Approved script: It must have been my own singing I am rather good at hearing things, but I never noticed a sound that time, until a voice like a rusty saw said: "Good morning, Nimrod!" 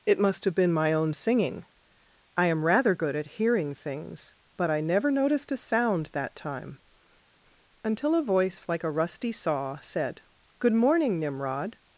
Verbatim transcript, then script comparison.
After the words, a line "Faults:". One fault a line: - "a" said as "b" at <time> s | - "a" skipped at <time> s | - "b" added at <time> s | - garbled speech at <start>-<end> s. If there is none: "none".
It must have been my own singing I am rather good at hearing things, but I never noticed a sound that time, until a voice like a rusty saw said: "Good morning, Nimrod!"
Faults:
none